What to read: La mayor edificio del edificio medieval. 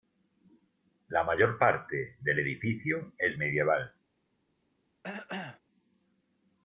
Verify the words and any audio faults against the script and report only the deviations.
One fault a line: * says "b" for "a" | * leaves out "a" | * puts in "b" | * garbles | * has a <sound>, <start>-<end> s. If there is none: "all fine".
* says "parte" for "edificio"
* puts in "es"
* has a cough, 5.0-5.6 s